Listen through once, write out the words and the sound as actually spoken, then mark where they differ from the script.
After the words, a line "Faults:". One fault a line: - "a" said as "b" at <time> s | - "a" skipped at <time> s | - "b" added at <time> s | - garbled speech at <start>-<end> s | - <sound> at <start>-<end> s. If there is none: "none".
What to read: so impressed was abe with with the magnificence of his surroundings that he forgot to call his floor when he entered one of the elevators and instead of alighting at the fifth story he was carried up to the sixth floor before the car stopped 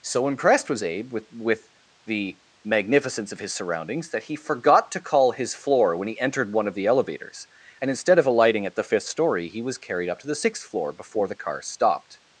so impressed was abe with with the magnificence of his surroundings that he forgot to call his floor when he entered one of the elevators and instead of alighting at the fifth story he was carried up to the sixth floor before the car stopped
Faults:
none